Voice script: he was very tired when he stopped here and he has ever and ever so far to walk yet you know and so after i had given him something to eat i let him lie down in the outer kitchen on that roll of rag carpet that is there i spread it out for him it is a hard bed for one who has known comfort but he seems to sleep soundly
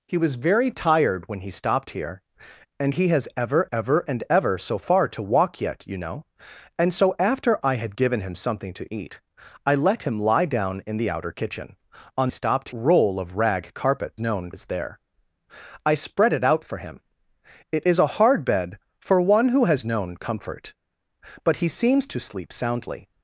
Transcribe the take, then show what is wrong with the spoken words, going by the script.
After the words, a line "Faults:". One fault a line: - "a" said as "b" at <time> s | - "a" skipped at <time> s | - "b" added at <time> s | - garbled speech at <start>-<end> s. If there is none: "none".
he was very tired when he stopped here and he has ever ever and ever so far to walk yet you know and so after i had given him something to eat i let him lie down in the outer kitchen on stopped roll of rag carpet known is there i spread it out for him it is a hard bed for one who has known comfort but he seems to sleep soundly
Faults:
- "ever" added at 3.7 s
- "that" said as "stopped" at 12.3 s
- "that" said as "known" at 14.2 s